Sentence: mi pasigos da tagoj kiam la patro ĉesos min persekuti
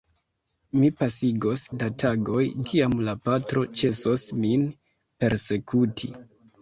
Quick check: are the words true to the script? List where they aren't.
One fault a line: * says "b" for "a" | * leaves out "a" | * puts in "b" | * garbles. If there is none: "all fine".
all fine